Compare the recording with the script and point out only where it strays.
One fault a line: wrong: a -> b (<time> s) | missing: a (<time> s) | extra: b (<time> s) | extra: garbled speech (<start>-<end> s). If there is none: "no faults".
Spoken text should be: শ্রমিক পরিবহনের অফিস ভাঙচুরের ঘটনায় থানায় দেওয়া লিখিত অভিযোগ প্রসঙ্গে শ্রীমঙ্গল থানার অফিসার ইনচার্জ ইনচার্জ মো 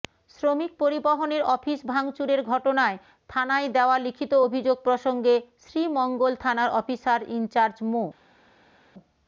missing: ইনচার্জ (7.8 s)